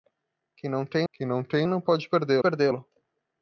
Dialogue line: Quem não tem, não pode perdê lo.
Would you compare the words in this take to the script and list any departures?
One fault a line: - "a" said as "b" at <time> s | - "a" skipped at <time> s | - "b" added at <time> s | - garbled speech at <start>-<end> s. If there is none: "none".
- "quem" added at 1.1 s
- "tem não" added at 1.4 s
- "perdê" added at 2.4 s